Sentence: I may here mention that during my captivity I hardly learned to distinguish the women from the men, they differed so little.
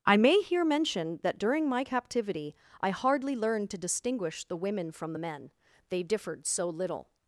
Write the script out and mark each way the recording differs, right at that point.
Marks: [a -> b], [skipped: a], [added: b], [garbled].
I may here mention that during my captivity I hardly learned to distinguish the women from the men, they differed so little.